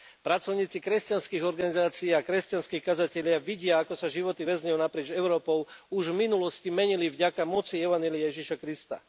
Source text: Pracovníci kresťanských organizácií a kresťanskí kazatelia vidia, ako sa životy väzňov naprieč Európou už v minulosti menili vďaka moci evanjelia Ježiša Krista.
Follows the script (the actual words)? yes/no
yes